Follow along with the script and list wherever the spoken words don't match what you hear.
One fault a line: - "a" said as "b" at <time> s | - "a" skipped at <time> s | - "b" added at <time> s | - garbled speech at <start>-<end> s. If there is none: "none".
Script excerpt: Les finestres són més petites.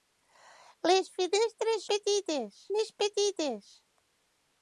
- "són" said as "petites" at 1.9 s